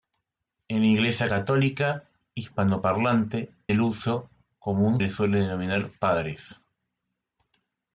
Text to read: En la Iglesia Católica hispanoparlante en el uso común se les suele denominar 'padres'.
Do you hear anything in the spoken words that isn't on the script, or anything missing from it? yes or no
yes